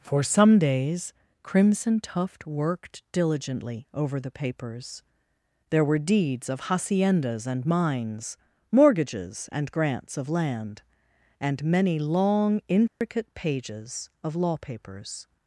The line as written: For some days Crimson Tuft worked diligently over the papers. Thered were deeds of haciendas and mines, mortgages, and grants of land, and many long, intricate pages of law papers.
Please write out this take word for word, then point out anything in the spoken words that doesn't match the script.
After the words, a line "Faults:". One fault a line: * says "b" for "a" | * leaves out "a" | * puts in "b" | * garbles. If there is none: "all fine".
For some days Crimson Tuft worked diligently over the papers. There were deeds of haciendas and mines, mortgages, and grants of land, and many long, intricate pages of law papers.
Faults:
* says "There" for "Thered"